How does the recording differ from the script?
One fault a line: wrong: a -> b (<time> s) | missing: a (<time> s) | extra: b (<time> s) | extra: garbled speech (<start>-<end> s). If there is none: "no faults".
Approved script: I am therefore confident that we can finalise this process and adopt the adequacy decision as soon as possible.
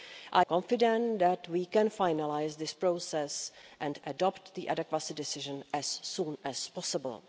missing: am therefore (0.5 s)